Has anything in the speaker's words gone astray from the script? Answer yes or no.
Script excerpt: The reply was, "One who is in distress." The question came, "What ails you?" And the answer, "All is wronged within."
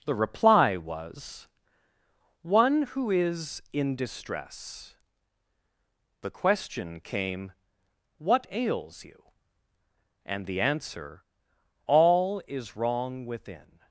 yes